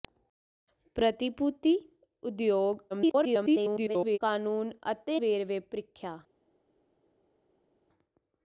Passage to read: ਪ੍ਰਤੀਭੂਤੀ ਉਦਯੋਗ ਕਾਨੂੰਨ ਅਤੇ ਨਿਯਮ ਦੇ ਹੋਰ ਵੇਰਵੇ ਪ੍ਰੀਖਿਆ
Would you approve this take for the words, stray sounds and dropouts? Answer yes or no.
no